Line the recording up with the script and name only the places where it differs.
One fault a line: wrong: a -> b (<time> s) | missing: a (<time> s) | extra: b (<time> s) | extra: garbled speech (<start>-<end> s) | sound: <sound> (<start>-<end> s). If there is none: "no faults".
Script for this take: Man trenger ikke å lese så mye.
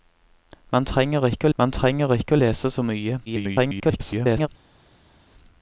extra: man trenger ikke (1.6 s)
extra: garbled speech (3.3-4.5 s)